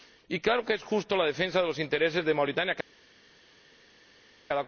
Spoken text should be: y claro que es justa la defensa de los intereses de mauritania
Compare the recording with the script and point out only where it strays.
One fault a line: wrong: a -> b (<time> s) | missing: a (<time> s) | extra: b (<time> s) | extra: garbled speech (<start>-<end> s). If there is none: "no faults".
no faults